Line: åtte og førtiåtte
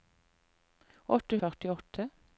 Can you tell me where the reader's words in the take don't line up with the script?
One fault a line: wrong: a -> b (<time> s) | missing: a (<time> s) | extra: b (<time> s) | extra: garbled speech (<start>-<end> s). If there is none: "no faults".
no faults